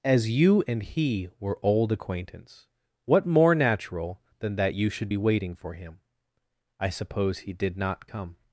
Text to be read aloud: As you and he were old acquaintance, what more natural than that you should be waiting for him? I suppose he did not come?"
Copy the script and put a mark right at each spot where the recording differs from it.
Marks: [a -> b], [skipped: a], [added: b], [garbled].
As you and he were old acquaintance, what more natural than that you should be waiting for him? I suppose he did not come?"